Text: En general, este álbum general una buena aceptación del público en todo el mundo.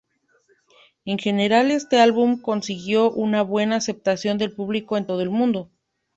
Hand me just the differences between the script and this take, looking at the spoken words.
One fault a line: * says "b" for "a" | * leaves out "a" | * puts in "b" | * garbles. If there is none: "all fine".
* says "consiguió" for "general"